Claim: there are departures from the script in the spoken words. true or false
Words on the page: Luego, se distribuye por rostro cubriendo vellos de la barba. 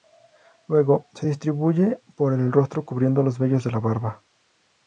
true